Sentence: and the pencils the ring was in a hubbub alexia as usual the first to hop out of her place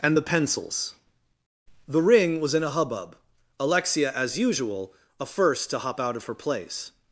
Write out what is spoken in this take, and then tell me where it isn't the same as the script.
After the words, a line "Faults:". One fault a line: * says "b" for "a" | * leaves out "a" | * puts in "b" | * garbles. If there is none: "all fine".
and the pencils the ring was in a hubbub alexia as usual a first to hop out of her place
Faults:
* says "a" for "the"